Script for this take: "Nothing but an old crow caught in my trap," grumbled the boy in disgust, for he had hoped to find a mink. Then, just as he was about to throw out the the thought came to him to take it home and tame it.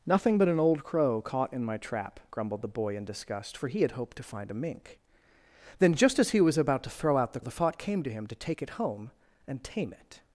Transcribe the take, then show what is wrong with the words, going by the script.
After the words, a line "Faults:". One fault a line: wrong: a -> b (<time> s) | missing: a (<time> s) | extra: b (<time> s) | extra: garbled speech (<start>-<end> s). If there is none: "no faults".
"Nothing but an old crow caught in my trap," grumbled the boy in disgust, for he had hoped to find a mink. Then, just as he was about to throw out the the thought came to him to take it home and tame it.
Faults:
no faults